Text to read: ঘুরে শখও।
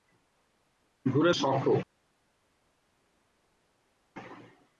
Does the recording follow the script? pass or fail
pass